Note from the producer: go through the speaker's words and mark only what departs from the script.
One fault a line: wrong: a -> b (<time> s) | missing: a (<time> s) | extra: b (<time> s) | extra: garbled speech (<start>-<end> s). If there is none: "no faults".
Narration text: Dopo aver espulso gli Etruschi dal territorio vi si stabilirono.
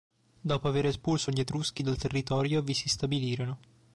no faults